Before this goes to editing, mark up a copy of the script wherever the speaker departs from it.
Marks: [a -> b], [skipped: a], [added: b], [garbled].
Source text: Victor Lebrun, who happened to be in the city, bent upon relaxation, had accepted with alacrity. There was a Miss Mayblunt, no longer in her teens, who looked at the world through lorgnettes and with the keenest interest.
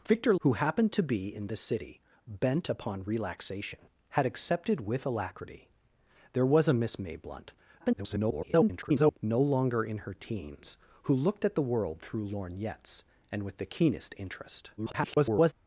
Victor [skipped: Lebrun,] who happened to be in the city, bent upon relaxation, had accepted with alacrity. There was a Miss Mayblunt, [garbled] no longer in her teens, who looked at the world through lorgnettes and with the keenest interest. [garbled]